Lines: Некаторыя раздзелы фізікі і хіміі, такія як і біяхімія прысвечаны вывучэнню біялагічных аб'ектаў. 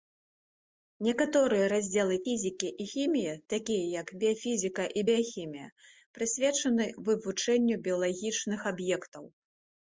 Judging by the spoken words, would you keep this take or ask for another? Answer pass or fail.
fail